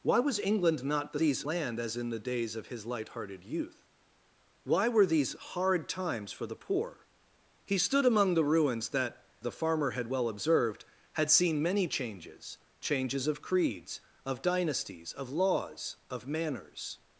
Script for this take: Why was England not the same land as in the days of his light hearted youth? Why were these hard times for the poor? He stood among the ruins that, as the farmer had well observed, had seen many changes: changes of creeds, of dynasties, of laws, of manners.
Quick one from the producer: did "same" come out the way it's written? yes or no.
no